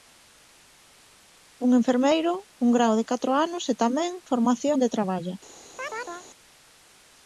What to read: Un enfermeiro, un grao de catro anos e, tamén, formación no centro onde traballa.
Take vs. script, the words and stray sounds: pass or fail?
fail